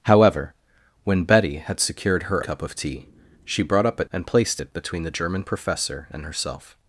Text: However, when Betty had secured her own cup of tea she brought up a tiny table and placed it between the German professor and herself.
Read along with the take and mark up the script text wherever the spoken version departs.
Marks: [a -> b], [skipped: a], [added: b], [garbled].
However, when Betty had secured her [skipped: own] cup of tea she brought up a [skipped: tiny table] and placed it between the German professor and herself.